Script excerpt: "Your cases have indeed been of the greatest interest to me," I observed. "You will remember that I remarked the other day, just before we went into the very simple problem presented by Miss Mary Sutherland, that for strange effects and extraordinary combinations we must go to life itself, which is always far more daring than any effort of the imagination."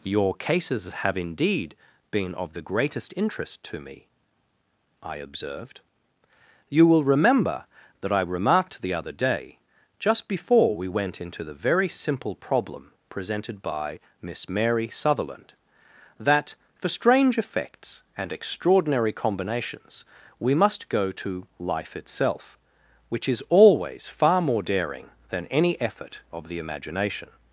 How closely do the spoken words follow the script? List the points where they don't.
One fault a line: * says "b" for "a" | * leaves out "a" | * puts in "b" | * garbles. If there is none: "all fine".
all fine